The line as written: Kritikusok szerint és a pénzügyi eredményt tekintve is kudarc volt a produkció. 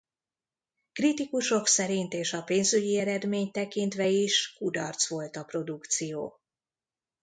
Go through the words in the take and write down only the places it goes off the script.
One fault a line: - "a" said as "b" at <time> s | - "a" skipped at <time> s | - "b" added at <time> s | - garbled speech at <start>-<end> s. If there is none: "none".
none